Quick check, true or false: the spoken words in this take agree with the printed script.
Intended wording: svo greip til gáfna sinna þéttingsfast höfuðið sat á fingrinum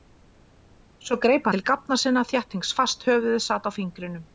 true